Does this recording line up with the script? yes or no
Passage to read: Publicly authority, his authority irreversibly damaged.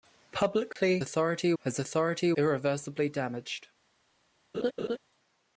yes